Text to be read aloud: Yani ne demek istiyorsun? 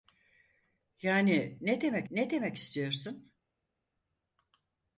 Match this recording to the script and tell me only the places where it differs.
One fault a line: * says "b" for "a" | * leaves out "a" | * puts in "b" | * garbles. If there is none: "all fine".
* puts in "ne demek"